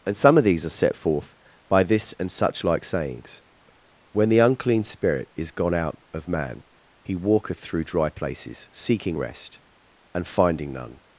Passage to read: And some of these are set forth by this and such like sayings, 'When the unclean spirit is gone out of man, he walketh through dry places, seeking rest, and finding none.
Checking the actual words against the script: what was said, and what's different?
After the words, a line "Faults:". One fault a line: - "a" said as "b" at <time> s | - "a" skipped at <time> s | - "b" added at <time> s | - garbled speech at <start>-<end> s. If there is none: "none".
And some of these are set forth by this and such like sayings, 'When the unclean spirit is gone out of man, he walketh through dry places, seeking rest, and finding none.
Faults:
none